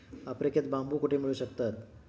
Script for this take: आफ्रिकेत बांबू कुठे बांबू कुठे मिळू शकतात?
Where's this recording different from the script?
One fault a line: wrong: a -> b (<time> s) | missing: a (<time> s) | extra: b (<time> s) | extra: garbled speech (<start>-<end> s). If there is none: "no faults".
missing: बांबू कुठे (1.2 s)